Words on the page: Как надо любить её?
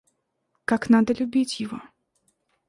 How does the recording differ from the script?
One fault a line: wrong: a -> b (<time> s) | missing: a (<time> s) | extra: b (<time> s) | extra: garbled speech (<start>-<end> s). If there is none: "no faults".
wrong: её -> его (1.6 s)